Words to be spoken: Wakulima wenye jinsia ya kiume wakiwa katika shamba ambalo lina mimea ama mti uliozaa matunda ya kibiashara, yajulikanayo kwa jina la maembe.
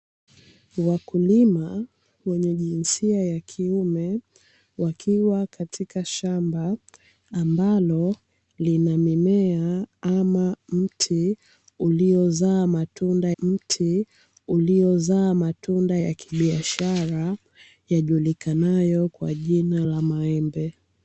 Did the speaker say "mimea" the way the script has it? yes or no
yes